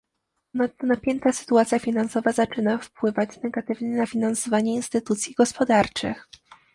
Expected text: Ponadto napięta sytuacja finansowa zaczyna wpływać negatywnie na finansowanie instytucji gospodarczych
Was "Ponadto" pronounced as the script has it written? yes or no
yes